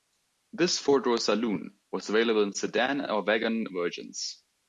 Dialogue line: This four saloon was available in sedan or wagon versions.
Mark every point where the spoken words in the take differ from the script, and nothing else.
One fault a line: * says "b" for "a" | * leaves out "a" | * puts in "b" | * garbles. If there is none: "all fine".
* puts in "door"